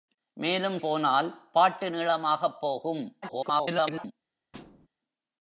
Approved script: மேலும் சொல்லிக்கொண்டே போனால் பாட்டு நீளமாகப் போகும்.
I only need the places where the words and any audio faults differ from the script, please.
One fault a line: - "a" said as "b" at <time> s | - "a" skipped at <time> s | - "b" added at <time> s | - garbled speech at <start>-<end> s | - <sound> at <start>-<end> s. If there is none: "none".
- "சொல்லிக்கொண்டே" skipped at 0.8 s
- garbled speech at 3.2-4.1 s
- thud at 4.5-4.9 s